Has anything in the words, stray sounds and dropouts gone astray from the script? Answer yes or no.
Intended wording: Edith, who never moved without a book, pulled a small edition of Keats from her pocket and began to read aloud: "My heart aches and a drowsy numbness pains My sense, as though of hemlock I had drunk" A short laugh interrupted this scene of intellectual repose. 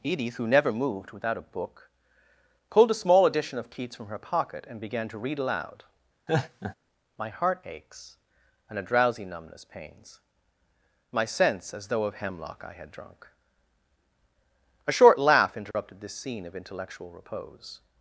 yes